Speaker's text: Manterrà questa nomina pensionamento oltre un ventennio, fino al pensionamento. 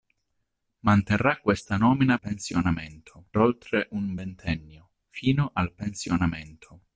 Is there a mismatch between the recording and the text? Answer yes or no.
no